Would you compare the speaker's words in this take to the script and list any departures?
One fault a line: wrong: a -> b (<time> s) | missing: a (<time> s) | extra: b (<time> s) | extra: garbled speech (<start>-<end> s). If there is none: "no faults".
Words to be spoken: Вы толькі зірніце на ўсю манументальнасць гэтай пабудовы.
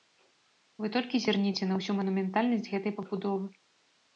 no faults